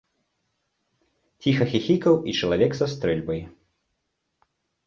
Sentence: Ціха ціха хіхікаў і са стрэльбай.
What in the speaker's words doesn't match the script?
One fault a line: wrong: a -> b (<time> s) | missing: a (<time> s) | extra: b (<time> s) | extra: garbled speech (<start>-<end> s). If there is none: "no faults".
missing: ціха (1.7 s)
extra: чалавек (2.4 s)